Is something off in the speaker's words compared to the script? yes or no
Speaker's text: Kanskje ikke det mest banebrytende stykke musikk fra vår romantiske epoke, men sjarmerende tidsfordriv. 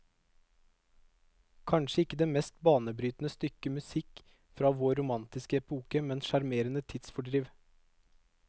no